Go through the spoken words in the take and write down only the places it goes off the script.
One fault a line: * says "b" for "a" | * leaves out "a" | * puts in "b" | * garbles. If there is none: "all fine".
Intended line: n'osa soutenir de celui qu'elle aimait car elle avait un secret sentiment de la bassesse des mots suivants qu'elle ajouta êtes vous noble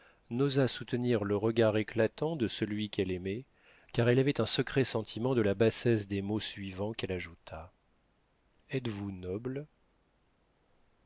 * puts in "le regard éclatant"